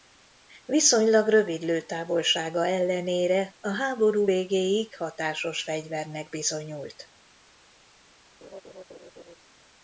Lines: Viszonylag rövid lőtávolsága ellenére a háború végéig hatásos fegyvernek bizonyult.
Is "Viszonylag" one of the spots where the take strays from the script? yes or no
no